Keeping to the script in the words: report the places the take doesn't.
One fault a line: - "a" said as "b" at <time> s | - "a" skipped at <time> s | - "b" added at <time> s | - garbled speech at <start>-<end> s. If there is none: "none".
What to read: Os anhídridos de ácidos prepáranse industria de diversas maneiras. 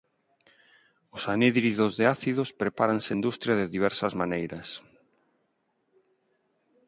none